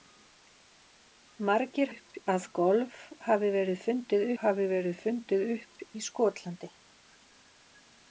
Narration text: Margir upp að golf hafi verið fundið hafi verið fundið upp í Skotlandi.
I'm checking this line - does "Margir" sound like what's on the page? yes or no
yes